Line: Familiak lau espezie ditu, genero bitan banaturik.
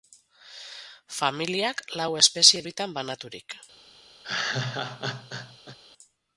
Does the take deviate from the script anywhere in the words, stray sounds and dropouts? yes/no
yes